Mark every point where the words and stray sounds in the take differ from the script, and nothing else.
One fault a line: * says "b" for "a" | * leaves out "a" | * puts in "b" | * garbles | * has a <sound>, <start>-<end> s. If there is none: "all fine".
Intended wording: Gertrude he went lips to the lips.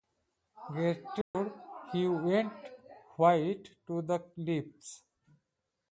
* has a dropout, 1.2-1.3 s
* says "white" for "lips"